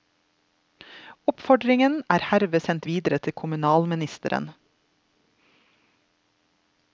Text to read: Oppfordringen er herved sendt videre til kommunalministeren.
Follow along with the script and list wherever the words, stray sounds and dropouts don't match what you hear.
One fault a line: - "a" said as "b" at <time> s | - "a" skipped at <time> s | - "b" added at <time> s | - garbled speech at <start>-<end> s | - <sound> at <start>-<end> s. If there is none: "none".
none